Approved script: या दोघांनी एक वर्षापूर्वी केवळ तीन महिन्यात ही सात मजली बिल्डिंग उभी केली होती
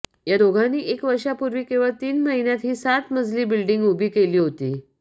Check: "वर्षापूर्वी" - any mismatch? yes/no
no